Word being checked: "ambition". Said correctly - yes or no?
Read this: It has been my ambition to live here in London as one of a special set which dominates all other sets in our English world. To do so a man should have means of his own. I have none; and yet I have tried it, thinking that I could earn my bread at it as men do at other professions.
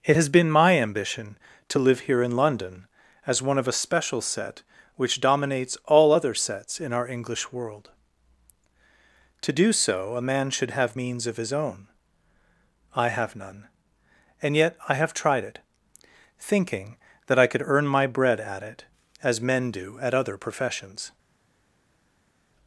yes